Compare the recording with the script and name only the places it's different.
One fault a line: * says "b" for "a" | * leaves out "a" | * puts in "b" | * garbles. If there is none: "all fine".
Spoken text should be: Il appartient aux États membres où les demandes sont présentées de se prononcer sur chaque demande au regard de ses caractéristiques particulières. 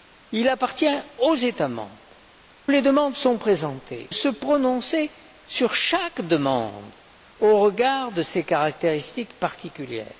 * leaves out "où"
* leaves out "de"